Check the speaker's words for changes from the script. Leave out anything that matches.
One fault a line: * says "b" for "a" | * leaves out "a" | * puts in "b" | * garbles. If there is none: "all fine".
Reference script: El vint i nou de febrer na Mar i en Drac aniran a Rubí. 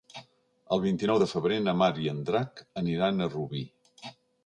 all fine